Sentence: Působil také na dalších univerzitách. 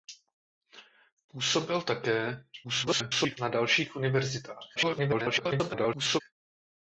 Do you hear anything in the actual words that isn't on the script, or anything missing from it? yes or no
yes